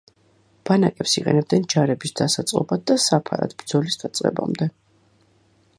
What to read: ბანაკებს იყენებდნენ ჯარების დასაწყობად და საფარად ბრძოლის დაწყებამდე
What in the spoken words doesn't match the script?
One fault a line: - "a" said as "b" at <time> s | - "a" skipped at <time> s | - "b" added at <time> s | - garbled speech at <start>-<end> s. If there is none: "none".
none